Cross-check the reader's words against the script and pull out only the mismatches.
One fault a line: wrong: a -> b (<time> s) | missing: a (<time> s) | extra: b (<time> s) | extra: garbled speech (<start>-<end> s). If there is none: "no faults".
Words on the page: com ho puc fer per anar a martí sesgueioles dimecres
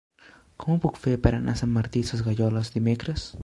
extra: sant (1.6 s)